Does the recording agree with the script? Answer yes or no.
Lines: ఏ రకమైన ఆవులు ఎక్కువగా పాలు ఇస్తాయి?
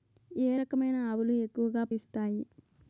no